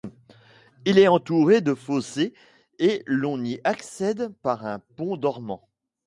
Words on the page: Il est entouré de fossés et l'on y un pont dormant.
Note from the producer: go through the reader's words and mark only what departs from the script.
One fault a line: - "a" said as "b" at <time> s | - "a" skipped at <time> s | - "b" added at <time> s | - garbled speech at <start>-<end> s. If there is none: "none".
- "accède par" added at 3.6 s